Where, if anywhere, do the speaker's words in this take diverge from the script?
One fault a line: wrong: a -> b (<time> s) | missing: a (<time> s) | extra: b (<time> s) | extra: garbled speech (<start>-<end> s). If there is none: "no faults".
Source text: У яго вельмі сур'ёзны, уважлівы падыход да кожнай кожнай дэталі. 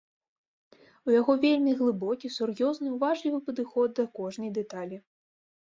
extra: глыбокі (1.8 s)
missing: кожнай (4.5 s)